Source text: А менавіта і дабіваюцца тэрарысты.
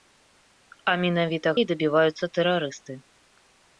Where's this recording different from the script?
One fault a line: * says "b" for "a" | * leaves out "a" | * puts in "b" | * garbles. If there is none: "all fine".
all fine